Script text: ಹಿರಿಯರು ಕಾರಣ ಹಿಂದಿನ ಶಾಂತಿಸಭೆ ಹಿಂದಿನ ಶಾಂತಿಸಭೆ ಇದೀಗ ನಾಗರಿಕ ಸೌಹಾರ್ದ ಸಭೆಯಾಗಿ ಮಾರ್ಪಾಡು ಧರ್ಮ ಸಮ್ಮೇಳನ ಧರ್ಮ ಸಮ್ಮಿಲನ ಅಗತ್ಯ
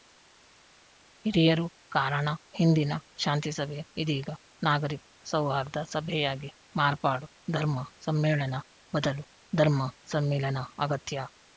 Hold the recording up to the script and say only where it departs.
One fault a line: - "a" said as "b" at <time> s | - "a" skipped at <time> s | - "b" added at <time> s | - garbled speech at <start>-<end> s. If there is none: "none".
- "ಹಿಂದಿನ ಶಾಂತಿಸಭೆ" skipped at 3.8 s
- "ಬದಲು" added at 8.9 s